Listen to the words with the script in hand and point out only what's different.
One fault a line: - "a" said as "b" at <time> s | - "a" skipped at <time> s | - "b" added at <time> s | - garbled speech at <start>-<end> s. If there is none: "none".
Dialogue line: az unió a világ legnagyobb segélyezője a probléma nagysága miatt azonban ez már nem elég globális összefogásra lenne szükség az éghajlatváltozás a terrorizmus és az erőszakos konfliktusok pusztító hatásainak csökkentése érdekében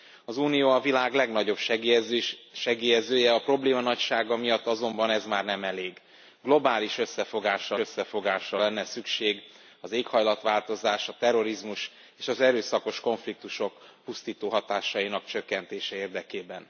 - "összefogásra" added at 7.8 s